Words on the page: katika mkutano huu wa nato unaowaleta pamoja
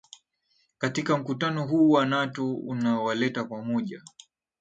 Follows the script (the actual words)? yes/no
yes